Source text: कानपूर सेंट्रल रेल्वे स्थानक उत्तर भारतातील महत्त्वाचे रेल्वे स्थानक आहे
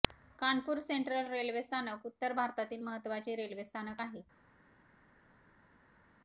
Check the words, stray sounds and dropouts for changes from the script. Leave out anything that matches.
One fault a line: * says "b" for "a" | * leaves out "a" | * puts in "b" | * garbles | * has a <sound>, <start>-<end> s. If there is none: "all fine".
all fine